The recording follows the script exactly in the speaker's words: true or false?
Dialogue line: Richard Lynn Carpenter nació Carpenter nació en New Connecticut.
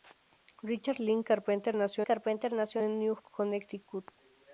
true